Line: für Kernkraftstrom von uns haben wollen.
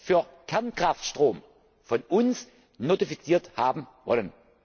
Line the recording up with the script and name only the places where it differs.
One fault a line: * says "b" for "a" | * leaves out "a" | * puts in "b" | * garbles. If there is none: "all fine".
* puts in "notifiziert"